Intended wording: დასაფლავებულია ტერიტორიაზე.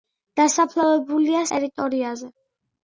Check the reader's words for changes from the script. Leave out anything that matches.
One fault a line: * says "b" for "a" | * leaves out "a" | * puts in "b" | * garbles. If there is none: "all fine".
all fine